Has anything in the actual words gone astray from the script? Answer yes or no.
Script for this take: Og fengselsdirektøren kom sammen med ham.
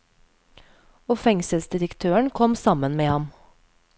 no